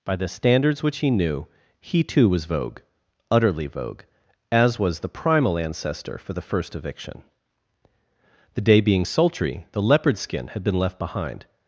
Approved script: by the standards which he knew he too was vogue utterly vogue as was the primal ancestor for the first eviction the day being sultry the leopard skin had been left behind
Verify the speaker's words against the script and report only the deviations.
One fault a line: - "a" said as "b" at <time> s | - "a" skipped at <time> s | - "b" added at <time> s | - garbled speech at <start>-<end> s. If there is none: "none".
none